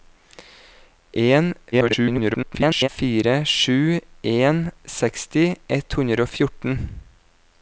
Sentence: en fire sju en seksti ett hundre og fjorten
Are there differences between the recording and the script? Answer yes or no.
yes